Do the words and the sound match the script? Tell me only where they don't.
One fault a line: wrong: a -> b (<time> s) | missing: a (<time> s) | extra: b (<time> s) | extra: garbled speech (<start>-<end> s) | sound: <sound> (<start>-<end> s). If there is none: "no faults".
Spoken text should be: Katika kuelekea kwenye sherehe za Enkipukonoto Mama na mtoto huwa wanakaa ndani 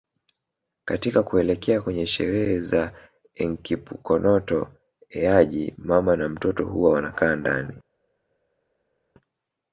extra: Eaji (5.1 s)